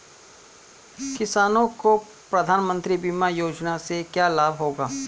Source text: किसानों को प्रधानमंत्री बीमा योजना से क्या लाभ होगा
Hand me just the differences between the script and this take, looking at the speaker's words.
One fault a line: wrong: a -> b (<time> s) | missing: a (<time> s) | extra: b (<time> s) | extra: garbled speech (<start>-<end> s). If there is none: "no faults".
no faults